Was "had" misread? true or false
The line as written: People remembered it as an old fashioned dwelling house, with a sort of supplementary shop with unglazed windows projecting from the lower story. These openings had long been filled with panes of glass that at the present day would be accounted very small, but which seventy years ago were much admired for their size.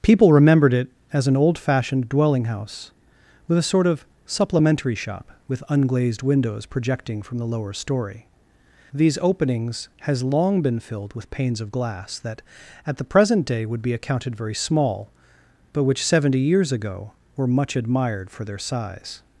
true